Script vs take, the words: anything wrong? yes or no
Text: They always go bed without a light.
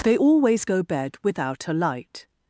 no